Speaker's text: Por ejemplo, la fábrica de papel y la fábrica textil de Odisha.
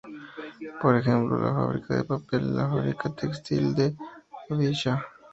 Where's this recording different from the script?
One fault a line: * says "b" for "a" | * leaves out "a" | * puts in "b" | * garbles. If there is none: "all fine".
all fine